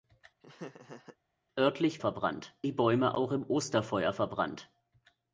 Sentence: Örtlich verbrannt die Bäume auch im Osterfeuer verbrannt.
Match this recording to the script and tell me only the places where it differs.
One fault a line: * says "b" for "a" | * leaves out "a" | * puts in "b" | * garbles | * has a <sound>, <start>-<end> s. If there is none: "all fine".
* has a laugh, 0.4-1.2 s